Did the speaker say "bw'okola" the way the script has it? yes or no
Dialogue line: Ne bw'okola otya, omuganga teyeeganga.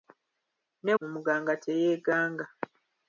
no